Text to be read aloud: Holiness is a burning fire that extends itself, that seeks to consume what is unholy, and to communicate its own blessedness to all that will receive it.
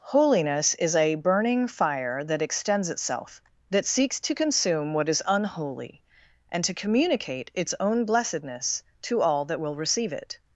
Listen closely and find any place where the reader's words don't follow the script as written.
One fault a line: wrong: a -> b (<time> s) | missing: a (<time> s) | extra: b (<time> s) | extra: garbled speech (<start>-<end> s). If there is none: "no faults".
no faults